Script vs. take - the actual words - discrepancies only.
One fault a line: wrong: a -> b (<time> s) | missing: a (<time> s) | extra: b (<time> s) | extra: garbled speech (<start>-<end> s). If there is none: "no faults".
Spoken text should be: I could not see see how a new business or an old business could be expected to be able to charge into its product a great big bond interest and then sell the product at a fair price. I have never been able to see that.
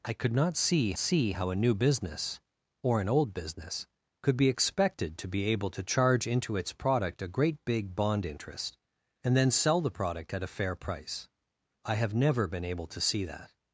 no faults